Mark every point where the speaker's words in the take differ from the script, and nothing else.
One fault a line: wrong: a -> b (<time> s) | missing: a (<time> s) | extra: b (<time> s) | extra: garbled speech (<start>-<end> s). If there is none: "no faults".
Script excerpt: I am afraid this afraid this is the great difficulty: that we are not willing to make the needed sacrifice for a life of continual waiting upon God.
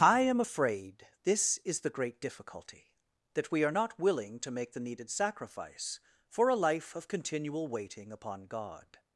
missing: afraid this (1.6 s)